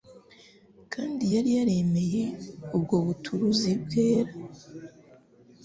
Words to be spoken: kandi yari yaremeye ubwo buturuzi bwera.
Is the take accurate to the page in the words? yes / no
yes